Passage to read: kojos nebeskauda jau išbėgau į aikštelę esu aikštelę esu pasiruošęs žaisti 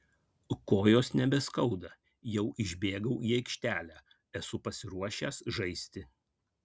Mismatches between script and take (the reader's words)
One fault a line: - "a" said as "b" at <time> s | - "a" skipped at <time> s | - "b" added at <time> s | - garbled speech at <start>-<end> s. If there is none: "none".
- "aikštelę esu" skipped at 4.6 s